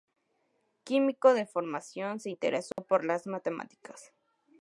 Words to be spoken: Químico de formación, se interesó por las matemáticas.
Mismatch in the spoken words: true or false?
false